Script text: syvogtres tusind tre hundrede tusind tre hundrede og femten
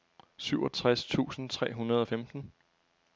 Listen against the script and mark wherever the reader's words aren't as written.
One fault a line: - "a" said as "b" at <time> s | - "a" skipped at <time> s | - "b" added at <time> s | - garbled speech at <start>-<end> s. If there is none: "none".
- "tusind tre hundrede" skipped at 2.0 s